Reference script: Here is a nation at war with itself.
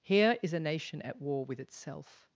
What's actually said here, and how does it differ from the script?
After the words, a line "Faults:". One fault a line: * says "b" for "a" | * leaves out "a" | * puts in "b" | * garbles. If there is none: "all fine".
Here is a nation at war with itself.
Faults:
all fine